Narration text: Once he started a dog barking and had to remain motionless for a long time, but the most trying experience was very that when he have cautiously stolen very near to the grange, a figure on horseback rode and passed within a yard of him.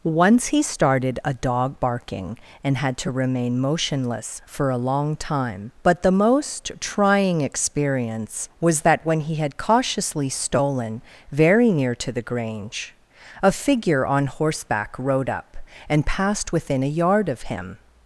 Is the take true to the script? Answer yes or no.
no